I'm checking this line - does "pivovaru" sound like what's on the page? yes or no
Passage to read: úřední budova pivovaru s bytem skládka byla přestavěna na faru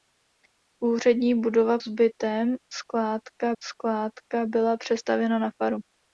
no